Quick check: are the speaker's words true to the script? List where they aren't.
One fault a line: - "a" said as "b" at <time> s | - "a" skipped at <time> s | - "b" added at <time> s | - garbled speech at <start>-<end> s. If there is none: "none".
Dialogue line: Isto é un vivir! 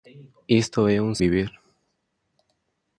none